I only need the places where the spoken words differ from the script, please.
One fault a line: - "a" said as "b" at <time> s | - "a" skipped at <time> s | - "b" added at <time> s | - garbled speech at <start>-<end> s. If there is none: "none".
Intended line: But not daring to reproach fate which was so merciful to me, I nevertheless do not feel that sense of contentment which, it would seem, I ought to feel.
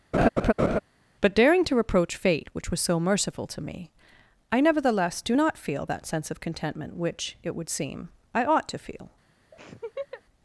- "not" skipped at 1.3 s